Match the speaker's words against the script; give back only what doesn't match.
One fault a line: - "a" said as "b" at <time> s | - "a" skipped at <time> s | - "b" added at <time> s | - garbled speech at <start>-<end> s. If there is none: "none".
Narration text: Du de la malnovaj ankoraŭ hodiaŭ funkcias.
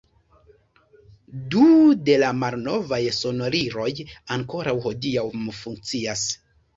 - "sonoriloj" added at 3.2 s